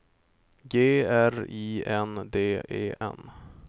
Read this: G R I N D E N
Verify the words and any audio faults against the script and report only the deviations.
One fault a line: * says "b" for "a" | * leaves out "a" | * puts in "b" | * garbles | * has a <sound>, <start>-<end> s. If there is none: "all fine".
* has a dropout, 3.0-3.0 s